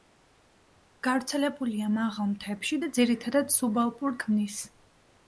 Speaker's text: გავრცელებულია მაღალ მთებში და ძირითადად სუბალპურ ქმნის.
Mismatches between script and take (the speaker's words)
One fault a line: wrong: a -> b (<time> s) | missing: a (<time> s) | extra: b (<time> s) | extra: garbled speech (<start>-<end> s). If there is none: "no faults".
no faults